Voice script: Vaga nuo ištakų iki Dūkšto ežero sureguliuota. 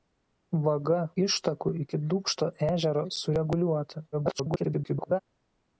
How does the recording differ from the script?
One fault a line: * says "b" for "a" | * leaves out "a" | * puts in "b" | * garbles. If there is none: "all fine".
* leaves out "nuo"
* garbles